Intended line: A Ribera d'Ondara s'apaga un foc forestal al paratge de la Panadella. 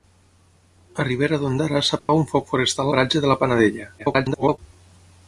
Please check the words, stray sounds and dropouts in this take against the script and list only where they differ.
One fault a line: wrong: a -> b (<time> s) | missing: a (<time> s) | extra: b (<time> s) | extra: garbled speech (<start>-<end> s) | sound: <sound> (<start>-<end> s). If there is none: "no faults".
sound: dropout (2.0-2.1 s)
missing: al (2.9 s)
extra: garbled speech (4.0-4.6 s)